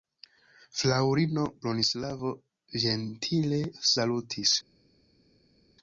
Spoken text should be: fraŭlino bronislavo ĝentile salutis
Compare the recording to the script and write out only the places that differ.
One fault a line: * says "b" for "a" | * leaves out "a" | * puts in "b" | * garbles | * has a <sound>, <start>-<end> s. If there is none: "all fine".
all fine